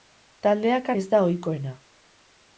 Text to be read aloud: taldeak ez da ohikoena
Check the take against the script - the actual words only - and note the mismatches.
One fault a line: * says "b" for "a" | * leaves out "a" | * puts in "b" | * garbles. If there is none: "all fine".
all fine